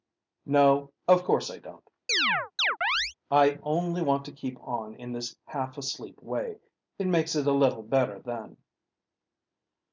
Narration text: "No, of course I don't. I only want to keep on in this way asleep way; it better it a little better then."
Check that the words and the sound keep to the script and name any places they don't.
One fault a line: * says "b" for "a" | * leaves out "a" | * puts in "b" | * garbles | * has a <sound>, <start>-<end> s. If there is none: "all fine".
* has a chirp, 2.1-3.1 s
* says "half" for "way"
* says "makes" for "better"